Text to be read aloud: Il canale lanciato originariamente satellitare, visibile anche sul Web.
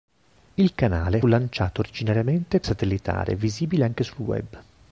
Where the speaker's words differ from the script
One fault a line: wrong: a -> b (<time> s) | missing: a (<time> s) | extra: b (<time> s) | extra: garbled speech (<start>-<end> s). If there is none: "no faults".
no faults